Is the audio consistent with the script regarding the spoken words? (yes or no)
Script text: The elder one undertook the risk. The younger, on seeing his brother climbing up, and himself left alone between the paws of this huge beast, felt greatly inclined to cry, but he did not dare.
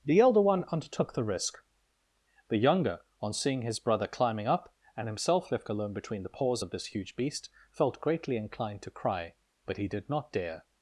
yes